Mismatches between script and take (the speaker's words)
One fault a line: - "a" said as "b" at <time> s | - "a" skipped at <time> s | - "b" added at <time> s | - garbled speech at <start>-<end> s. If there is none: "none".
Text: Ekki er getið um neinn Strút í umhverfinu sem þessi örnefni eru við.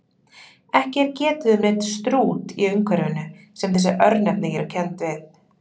- "kennd" added at 4.8 s